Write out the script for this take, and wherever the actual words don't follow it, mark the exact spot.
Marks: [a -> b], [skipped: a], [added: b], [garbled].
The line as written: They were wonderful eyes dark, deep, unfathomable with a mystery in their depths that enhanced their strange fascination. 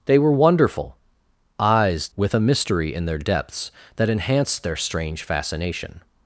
They were wonderful eyes [skipped: dark, deep, unfathomable] with a mystery in their depths that enhanced their strange fascination.